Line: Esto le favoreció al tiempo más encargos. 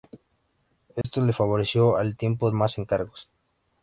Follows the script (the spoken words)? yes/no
yes